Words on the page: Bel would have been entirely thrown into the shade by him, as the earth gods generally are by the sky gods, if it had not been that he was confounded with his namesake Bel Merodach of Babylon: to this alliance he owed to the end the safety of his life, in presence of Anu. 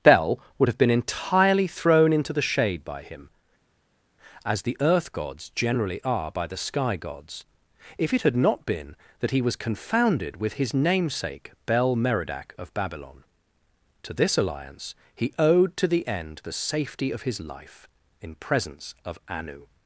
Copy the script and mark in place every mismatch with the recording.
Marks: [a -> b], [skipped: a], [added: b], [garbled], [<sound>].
Bel would have been entirely thrown into the shade by him, as the earth gods generally are by the sky gods, if it had not been that he was confounded with his namesake Bel Merodach of Babylon: to this alliance he owed to the end the safety of his life, in presence of Anu.